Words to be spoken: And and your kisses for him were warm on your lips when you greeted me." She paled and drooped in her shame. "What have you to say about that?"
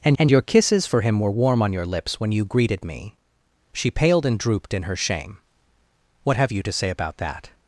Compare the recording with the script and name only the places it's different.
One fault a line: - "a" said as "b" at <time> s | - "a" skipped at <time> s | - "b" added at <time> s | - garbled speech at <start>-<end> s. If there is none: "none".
none